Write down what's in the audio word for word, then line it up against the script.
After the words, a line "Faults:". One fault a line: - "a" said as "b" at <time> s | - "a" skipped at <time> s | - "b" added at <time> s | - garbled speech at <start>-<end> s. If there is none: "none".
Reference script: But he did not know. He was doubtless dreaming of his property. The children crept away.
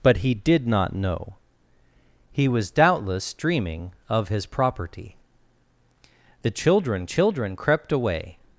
But he did not know. He was doubtless dreaming of his property. The children children crept away.
Faults:
- "children" added at 7.0 s